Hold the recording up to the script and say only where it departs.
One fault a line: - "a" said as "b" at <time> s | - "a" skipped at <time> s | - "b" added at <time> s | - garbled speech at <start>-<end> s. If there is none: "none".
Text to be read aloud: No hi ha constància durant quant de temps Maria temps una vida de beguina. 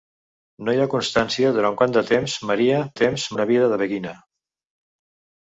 none